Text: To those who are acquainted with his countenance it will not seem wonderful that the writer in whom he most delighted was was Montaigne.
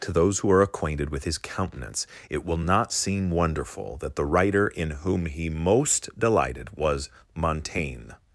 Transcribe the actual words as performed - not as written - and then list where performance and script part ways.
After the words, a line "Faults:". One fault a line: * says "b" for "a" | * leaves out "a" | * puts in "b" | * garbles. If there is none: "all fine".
To those who are acquainted with his countenance it will not seem wonderful that the writer in whom he most delighted was Montaigne.
Faults:
* leaves out "was"